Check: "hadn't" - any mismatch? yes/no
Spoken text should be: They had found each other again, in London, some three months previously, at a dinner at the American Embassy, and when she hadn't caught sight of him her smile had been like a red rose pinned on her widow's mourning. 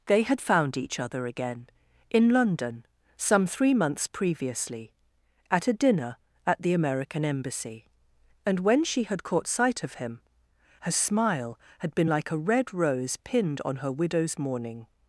yes